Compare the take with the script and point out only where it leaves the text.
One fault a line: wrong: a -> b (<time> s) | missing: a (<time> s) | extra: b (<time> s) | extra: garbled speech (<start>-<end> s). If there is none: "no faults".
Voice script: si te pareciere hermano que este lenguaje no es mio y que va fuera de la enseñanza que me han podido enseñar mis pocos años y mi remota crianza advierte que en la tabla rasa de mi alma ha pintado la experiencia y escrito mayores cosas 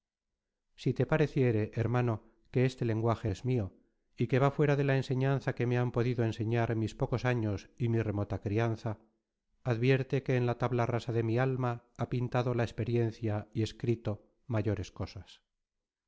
missing: no (3.3 s)